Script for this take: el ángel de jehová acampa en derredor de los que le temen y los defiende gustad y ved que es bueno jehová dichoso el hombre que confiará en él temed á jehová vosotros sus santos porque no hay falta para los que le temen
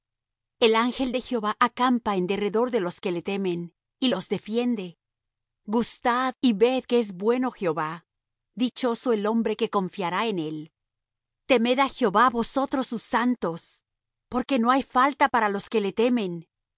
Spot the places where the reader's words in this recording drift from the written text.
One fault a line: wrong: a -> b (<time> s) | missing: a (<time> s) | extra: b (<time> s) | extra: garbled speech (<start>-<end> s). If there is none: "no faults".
no faults